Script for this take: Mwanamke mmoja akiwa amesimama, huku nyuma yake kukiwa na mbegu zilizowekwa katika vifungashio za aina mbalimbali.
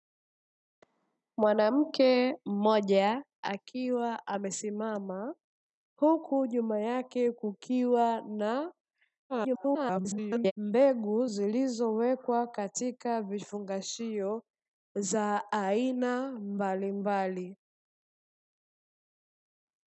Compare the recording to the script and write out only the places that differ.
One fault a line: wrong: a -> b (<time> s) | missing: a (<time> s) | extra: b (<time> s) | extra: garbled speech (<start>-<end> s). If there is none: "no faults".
extra: garbled speech (9.3-10.5 s)